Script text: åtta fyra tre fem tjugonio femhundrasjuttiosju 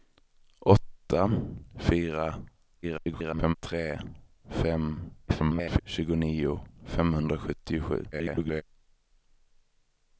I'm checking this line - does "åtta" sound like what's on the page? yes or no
yes